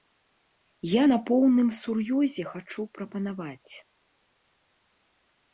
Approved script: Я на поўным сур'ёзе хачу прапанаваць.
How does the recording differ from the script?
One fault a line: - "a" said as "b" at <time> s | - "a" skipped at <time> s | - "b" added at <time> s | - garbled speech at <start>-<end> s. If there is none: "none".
none